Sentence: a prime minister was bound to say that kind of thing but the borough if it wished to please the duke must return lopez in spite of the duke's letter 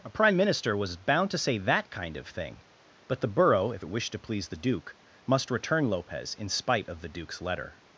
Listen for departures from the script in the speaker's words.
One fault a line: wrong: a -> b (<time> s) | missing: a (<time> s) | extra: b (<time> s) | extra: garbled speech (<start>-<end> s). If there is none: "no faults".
no faults